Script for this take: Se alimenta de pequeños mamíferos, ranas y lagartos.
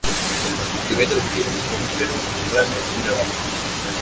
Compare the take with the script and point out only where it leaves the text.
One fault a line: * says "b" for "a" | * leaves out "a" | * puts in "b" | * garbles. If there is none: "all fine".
all fine